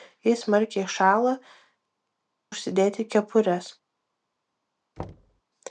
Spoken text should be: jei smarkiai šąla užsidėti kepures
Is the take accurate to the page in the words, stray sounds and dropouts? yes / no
no